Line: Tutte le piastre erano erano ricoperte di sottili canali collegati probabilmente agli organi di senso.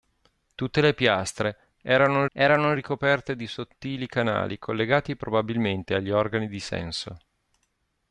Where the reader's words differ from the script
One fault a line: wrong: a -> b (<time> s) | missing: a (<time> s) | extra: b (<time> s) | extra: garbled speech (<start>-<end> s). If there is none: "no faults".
no faults